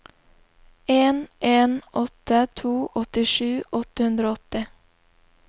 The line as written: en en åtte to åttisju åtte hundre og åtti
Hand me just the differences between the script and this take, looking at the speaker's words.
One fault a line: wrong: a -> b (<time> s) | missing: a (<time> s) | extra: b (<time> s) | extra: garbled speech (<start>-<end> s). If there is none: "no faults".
no faults